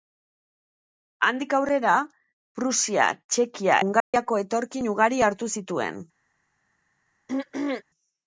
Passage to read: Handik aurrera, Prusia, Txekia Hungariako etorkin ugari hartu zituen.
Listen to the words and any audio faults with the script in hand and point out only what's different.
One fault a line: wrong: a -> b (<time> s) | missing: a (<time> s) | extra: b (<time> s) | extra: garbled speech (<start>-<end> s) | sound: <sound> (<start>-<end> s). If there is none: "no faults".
sound: dropout (4.0-4.1 s)
sound: throat clearing (7.3-7.8 s)